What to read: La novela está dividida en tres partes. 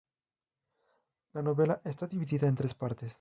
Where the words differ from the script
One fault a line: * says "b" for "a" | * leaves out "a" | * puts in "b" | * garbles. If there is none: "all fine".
all fine